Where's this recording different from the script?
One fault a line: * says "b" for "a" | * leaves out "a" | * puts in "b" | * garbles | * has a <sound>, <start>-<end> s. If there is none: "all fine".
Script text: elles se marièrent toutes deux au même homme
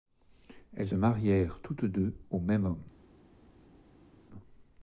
* leaves out "se"